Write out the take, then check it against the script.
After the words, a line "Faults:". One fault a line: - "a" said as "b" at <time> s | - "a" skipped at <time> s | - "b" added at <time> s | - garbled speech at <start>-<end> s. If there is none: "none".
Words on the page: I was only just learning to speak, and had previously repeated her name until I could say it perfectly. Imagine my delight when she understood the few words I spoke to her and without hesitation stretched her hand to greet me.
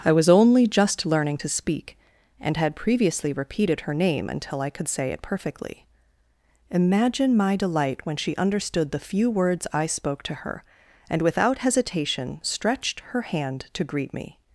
I was only just learning to speak, and had previously repeated her name until I could say it perfectly. Imagine my delight when she understood the few words I spoke to her and without hesitation stretched her hand to greet me.
Faults:
none